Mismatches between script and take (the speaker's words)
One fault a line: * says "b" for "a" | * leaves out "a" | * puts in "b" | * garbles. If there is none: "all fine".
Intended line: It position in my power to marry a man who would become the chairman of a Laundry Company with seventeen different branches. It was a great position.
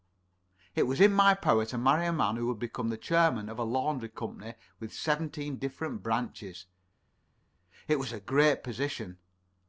* says "was" for "position"